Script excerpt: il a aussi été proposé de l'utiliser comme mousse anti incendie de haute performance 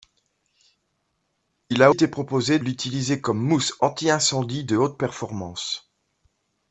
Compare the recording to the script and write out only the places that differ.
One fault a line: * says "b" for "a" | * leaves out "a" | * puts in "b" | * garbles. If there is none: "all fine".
* leaves out "aussi"
* leaves out "de"